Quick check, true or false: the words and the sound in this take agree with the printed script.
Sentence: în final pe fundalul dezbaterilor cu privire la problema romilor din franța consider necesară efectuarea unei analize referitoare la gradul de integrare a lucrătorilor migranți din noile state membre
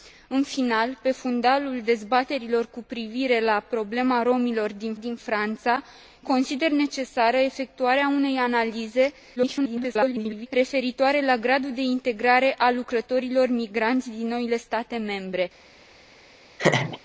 false